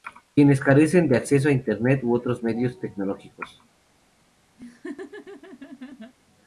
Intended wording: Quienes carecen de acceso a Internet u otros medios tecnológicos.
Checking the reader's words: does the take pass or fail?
pass